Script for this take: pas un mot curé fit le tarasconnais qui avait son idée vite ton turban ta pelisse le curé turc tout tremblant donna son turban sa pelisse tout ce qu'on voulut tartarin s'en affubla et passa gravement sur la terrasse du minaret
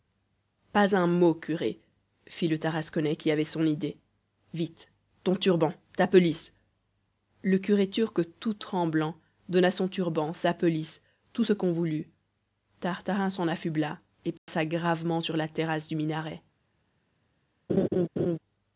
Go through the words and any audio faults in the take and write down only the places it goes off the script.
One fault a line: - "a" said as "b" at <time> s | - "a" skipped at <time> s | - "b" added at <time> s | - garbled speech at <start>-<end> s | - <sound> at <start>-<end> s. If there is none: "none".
- dropout at 14.4-14.5 s
- laugh at 17.7-18.4 s